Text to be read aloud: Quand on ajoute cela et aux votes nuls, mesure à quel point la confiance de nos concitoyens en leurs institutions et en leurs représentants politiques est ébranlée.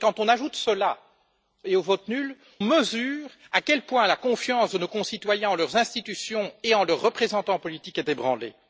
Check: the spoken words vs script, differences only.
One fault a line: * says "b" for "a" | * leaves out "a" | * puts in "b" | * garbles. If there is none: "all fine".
all fine